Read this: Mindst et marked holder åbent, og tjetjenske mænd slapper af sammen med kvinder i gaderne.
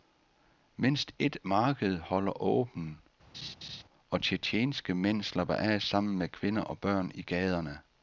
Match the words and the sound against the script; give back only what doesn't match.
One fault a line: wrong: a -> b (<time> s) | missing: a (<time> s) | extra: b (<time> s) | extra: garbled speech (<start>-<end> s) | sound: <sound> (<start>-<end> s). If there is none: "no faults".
sound: laugh (3.3-3.8 s)
extra: og børn (6.6 s)